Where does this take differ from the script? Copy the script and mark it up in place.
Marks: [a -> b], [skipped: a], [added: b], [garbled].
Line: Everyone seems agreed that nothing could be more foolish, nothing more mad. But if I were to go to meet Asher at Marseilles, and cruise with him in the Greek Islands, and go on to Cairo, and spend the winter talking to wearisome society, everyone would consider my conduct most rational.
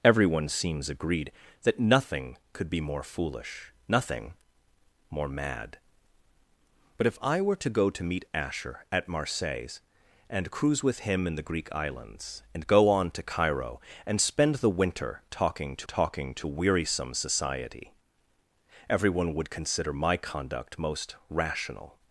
Everyone seems agreed that nothing could be more foolish, nothing more mad. But if I were to go to meet Asher at Marseilles, and cruise with him in the Greek Islands, and go on to Cairo, and spend the winter talking to [added: talking to] wearisome society, everyone would consider my conduct most rational.